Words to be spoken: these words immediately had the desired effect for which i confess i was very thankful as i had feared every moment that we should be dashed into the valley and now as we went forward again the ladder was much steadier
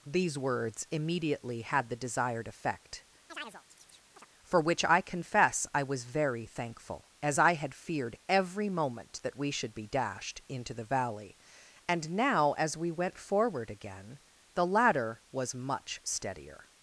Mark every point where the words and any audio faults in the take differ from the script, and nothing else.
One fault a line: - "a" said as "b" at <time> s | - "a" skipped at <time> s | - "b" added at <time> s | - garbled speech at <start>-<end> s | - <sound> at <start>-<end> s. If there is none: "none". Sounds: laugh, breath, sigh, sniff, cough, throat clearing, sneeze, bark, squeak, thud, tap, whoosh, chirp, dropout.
- chirp at 3.3-4.3 s